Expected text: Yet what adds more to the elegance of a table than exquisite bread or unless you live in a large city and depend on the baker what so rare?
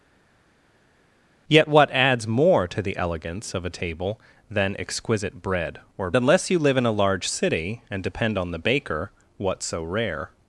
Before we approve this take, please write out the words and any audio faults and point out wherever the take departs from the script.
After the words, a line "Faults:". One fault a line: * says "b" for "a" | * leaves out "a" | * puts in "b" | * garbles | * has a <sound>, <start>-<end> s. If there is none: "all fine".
Yet what adds more to the elegance of a table than exquisite bread or unless you live in a large city and depend on the baker what so rare?
Faults:
all fine